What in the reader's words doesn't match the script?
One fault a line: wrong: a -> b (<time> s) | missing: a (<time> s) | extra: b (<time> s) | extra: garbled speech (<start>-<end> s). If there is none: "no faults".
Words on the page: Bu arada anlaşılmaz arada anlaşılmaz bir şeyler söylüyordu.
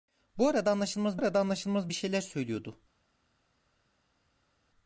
no faults